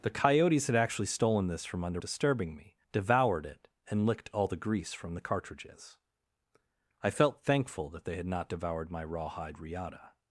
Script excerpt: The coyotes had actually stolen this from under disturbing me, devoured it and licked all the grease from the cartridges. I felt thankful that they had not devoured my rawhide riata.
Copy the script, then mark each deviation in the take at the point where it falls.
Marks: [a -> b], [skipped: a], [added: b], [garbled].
The coyotes had actually stolen this from under disturbing me, devoured it and licked all the grease from the cartridges. I felt thankful that they had not devoured my rawhide riata.